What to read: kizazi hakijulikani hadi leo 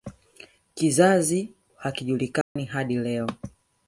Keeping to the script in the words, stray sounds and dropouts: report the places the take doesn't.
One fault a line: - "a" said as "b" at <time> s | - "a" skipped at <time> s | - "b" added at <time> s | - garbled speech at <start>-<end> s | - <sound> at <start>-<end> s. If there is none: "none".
- dropout at 2.4-2.6 s